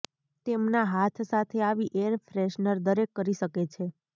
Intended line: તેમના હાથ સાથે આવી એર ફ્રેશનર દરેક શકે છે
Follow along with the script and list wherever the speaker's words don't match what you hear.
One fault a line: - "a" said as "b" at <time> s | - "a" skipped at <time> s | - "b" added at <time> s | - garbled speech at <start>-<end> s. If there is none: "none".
- "કરી" added at 3.1 s